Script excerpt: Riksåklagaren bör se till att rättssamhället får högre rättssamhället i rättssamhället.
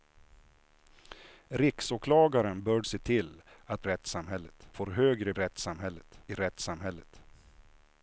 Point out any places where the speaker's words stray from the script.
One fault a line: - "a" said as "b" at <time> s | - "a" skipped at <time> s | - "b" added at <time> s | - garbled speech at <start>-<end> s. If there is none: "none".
none